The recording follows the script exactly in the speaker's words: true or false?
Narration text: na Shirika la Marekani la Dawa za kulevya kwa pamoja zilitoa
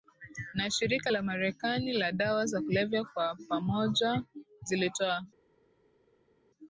true